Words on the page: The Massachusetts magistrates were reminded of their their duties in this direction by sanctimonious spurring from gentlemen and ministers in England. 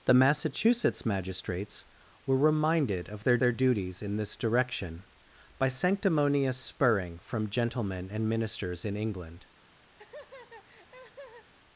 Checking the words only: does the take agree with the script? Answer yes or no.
yes